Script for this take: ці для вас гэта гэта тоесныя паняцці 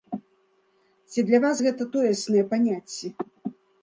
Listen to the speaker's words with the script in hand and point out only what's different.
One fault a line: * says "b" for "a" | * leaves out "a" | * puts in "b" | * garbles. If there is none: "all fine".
* leaves out "гэта"